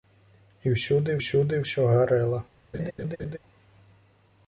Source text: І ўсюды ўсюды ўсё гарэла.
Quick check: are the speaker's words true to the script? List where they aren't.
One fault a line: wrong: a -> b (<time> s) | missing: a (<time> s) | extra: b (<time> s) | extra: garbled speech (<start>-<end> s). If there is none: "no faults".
no faults